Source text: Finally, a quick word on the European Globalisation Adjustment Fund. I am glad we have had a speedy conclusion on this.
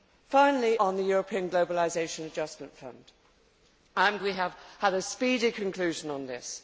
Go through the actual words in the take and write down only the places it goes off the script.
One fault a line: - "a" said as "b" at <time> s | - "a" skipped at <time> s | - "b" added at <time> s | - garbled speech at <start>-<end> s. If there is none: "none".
- "a quick word" skipped at 0.8 s
- "glad" skipped at 4.2 s